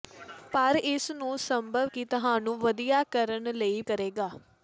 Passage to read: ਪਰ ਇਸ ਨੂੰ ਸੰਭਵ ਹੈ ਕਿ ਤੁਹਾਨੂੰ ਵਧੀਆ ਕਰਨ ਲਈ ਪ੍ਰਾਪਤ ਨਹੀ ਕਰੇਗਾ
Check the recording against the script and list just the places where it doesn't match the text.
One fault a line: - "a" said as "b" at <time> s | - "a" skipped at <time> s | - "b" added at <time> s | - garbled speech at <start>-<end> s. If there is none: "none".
- "ਹੈ" skipped at 1.9 s
- "ਪ੍ਰਾਪਤ ਨਹੀ" skipped at 3.8 s